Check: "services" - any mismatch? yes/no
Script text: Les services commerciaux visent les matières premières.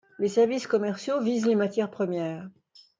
no